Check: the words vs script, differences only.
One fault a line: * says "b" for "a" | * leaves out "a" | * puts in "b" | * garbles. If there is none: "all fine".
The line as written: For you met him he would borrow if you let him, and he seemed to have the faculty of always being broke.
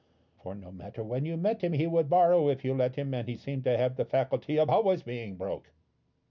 * puts in "no matter when"